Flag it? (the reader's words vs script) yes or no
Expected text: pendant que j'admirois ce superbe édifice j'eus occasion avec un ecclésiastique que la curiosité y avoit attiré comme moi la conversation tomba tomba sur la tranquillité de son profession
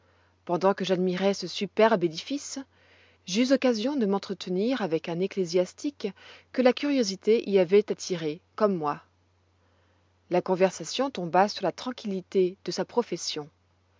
yes